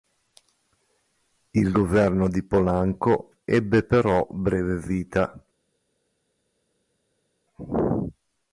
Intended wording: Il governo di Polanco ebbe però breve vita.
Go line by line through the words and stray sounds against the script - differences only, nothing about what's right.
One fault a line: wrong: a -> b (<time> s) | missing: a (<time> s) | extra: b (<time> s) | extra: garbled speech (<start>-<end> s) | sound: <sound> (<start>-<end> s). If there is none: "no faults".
no faults